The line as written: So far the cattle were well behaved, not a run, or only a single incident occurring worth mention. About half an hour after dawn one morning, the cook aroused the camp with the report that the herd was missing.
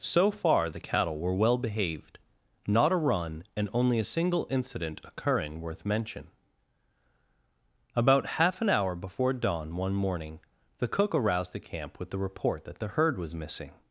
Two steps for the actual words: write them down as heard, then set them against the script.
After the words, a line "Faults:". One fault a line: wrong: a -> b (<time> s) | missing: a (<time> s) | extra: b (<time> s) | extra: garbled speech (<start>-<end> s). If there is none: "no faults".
So far the cattle were well behaved, not a run, and only a single incident occurring worth mention. About half an hour before dawn one morning, the cook aroused the camp with the report that the herd was missing.
Faults:
wrong: or -> and (3.5 s)
wrong: after -> before (8.9 s)